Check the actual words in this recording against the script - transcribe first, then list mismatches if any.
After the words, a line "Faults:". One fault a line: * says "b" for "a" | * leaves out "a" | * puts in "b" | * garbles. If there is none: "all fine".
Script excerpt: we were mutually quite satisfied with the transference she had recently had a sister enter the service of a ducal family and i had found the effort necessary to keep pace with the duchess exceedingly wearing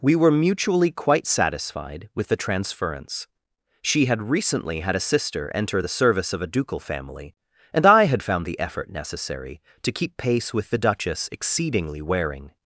we were mutually quite satisfied with the transference she had recently had a sister enter the service of a ducal family and i had found the effort necessary to keep pace with the duchess exceedingly wearing
Faults:
all fine